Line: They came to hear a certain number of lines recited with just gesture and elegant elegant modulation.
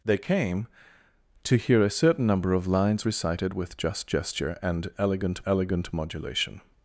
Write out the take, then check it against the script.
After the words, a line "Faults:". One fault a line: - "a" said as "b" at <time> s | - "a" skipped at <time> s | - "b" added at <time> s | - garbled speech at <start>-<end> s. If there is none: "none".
They came to hear a certain number of lines recited with just gesture and elegant elegant modulation.
Faults:
none